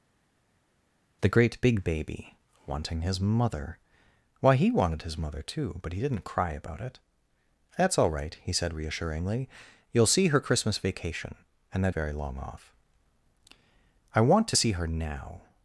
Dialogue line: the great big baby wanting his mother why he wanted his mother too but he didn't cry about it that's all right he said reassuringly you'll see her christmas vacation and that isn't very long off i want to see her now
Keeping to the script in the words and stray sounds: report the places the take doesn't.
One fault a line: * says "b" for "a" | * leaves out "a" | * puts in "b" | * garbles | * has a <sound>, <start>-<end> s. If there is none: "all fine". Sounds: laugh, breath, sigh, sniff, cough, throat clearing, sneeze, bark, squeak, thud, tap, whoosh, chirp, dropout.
* leaves out "isn't"